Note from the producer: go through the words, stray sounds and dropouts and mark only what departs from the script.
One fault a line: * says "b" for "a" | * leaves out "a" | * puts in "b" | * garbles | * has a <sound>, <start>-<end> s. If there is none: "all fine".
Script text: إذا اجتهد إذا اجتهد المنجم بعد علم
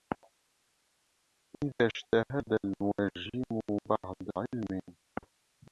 * leaves out "إذا اجتهد"